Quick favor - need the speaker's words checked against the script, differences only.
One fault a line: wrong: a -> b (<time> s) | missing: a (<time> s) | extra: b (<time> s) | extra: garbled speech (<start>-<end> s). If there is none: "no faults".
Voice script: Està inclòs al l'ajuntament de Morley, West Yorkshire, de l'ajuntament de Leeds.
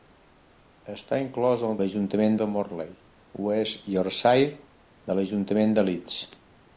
no faults